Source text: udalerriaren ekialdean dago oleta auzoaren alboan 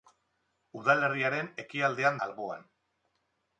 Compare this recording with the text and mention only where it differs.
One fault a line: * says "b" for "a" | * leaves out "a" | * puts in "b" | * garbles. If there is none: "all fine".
* leaves out "dago oleta auzoaren"